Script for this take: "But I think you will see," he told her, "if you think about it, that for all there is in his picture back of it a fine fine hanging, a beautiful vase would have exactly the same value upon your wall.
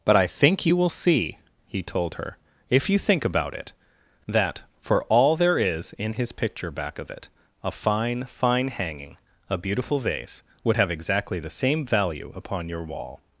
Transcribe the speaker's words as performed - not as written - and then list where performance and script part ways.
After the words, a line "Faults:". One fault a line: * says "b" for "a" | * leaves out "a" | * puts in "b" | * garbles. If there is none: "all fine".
"But I think you will see," he told her, "if you think about it, that for all there is in his picture back of it a fine fine hanging, a beautiful vase would have exactly the same value upon your wall.
Faults:
all fine